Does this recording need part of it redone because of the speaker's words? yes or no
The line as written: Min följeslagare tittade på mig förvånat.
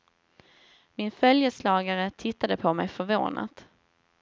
no